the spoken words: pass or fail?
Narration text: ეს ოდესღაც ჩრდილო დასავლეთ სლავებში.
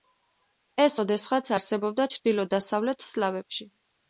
fail